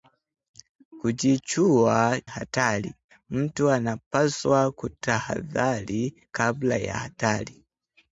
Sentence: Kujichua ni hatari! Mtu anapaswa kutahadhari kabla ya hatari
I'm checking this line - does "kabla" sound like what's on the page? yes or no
yes